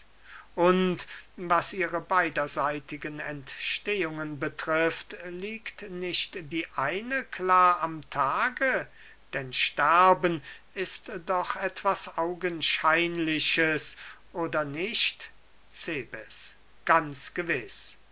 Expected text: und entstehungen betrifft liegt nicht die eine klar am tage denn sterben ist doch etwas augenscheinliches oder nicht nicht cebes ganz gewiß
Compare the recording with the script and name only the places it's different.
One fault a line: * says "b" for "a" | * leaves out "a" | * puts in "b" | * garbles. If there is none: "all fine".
* puts in "was ihre beiderseitigen"
* leaves out "nicht"